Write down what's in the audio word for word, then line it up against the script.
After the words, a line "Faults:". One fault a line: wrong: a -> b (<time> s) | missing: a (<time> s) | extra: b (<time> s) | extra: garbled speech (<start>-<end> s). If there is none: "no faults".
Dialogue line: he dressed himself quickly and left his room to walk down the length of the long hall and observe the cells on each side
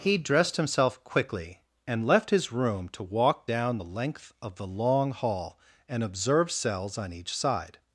he dressed himself quickly and left his room to walk down the length of the long hall and observe cells on each side
Faults:
missing: the (6.5 s)